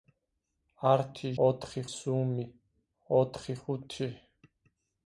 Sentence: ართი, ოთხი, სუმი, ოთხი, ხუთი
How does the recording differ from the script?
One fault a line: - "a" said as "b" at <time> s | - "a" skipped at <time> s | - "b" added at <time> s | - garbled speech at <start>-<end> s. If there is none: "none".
none